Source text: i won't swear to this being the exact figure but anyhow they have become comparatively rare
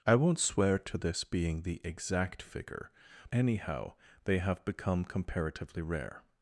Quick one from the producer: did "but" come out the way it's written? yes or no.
no